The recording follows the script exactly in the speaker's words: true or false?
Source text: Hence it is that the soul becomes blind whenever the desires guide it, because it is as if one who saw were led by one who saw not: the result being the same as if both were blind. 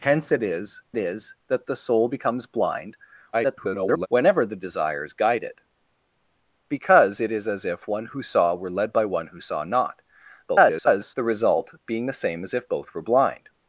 false